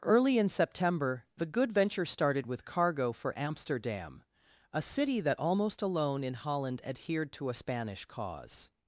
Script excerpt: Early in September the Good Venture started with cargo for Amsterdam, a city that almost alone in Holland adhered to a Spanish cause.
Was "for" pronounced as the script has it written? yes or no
yes